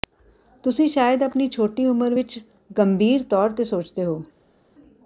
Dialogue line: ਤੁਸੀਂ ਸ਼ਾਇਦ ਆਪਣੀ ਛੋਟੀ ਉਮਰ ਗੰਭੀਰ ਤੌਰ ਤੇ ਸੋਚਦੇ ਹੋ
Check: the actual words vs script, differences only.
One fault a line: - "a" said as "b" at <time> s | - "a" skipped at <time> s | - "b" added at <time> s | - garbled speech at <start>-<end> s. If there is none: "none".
- "ਵਿਚ" added at 2.1 s